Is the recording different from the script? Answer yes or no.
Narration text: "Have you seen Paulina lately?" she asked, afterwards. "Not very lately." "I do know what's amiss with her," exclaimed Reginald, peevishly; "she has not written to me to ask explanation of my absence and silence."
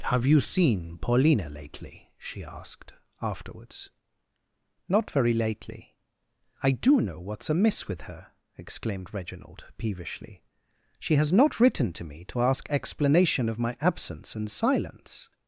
no